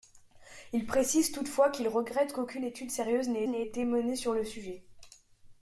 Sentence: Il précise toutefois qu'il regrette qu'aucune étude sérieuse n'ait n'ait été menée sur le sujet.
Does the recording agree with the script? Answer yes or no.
yes